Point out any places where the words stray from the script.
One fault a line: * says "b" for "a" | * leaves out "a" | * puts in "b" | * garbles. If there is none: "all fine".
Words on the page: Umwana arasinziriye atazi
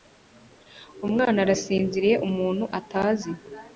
* puts in "umuntu"